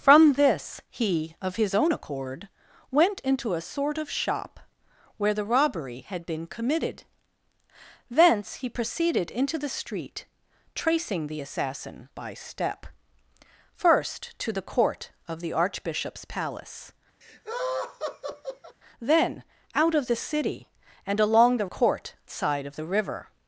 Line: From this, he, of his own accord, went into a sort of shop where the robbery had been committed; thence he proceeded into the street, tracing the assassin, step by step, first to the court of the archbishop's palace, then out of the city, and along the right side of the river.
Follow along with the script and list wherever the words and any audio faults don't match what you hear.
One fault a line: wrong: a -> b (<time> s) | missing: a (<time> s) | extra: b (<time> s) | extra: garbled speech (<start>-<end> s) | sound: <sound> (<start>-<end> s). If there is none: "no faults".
missing: step (12.1 s)
sound: laugh (17.2-18.8 s)
wrong: right -> court (21.6 s)